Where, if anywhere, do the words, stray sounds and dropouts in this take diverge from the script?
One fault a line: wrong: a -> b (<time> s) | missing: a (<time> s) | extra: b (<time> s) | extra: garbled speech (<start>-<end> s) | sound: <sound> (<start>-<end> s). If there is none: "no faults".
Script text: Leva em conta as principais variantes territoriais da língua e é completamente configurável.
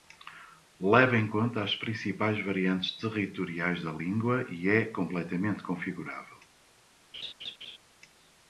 sound: laugh (7.1-7.8 s)